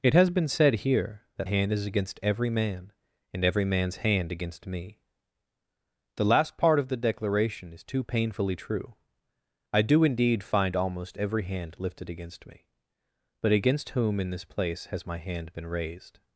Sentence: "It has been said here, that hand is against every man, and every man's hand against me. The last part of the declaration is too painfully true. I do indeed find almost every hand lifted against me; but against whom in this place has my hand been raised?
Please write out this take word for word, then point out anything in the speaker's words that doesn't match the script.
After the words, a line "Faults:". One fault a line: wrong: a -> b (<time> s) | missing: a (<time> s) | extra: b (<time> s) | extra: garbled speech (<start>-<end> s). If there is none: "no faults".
"It has been said here, that hand is against every man, and every man's hand against me. The last part of the declaration is too painfully true. I do indeed find almost every hand lifted against me; but against whom in this place has my hand been raised?
Faults:
no faults